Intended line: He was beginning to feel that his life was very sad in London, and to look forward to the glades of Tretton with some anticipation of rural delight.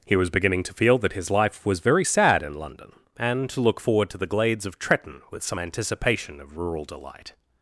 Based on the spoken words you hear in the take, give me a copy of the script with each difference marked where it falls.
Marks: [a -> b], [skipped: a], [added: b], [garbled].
He was beginning to feel that his life was very sad in London, and to look forward to the glades of Tretton with some anticipation of rural delight.